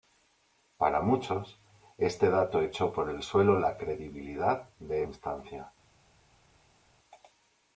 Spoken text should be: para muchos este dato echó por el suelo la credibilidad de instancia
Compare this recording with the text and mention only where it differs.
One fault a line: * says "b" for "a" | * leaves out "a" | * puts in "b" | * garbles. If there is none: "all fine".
all fine